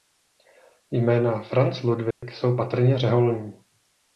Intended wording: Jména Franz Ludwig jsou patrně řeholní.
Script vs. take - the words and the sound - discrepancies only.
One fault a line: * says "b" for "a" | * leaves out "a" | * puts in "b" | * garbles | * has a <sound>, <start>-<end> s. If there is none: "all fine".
* has a dropout, 2.1-2.2 s